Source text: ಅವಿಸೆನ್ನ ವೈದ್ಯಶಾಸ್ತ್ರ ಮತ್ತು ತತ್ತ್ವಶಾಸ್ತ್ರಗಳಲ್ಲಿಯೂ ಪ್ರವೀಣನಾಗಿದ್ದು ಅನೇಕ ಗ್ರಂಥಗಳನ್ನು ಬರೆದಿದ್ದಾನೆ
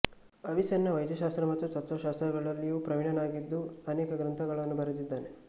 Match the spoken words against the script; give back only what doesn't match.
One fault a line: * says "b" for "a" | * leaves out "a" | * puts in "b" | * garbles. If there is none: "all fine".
all fine